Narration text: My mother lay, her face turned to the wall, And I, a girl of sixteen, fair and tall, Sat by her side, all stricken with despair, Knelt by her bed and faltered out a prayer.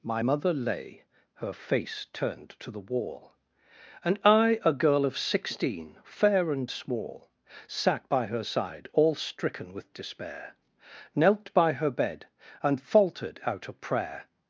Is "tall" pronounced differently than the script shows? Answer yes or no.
yes